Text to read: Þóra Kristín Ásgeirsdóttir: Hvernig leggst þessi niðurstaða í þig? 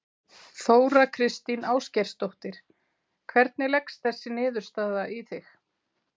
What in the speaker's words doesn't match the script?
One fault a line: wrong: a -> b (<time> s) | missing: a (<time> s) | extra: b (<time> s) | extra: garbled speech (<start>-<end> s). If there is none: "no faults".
no faults